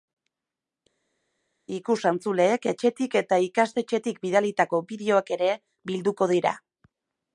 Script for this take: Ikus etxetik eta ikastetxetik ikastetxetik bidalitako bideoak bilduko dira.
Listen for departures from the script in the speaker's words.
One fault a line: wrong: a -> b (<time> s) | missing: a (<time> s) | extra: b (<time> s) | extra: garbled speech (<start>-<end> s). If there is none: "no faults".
extra: entzuleek (2.1 s)
missing: ikastetxetik (4.2 s)
extra: ere (5.4 s)